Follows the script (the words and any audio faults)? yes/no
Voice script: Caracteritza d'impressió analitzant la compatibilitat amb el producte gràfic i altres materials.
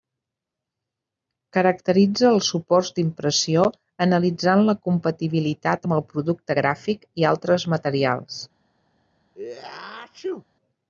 no